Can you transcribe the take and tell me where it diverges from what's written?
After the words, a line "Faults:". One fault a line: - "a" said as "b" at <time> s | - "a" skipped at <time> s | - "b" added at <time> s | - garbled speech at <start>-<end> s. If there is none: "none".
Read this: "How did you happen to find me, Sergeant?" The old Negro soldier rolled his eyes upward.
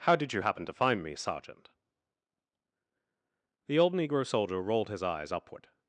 "How did you happen to find me, Sergeant?" The old Negro soldier rolled his eyes upward.
Faults:
none